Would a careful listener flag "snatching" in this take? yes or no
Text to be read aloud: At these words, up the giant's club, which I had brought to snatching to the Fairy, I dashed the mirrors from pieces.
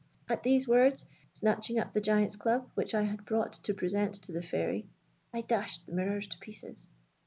yes